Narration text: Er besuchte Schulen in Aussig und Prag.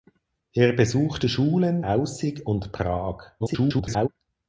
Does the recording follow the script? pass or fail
fail